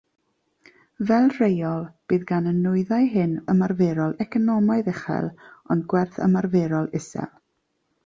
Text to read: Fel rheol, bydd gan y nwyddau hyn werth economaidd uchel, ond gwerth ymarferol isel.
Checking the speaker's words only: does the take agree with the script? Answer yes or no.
no